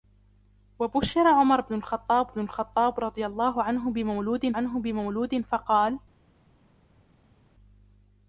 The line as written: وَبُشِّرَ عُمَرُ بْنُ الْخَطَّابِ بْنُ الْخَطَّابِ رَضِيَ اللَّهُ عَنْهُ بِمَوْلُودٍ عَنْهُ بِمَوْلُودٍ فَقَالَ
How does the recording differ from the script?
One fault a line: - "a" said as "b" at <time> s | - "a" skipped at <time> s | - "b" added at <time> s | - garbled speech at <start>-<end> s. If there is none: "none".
none